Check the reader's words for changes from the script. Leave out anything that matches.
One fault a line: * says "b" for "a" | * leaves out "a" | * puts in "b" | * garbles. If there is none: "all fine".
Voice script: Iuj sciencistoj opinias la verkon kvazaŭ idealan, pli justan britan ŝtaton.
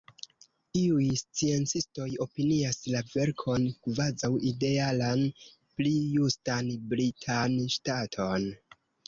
all fine